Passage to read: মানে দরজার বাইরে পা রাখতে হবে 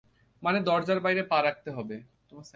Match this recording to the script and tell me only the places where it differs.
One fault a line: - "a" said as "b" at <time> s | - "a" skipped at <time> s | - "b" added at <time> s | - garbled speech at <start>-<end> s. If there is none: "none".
none